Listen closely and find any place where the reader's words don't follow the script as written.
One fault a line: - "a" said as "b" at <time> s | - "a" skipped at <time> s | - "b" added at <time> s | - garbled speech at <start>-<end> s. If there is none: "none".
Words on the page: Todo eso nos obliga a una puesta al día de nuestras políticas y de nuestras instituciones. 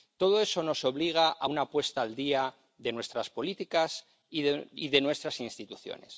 none